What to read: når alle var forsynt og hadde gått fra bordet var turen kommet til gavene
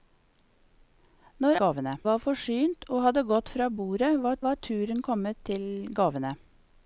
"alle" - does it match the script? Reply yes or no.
no